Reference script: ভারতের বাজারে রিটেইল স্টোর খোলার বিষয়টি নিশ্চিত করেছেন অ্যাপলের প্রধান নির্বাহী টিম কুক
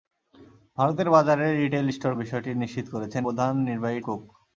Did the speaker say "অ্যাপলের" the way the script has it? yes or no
no